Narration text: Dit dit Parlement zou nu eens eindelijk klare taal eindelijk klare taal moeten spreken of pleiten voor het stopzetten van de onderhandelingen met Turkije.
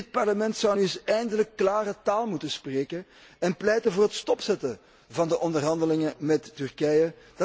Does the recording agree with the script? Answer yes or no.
no